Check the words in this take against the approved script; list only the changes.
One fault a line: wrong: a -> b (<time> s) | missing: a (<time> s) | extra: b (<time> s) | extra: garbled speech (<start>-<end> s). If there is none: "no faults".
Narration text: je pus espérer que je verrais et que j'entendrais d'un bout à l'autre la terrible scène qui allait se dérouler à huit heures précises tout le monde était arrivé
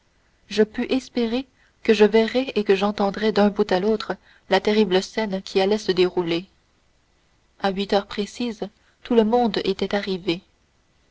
no faults